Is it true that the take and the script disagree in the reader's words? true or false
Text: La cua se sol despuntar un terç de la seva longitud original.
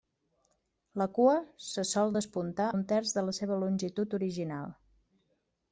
false